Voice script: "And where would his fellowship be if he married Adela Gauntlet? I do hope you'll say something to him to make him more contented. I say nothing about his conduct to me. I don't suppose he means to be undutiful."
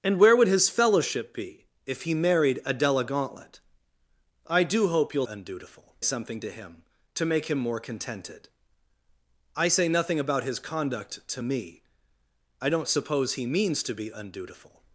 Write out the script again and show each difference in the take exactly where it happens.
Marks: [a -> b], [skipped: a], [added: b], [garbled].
"And where would his fellowship be if he married Adela Gauntlet? I do hope you'll [say -> undutiful] something to him to make him more contented. I say nothing about his conduct to me. I don't suppose he means to be undutiful."